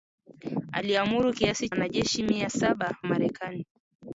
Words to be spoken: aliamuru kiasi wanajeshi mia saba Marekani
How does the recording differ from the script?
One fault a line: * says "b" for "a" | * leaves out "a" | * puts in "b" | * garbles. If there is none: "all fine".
all fine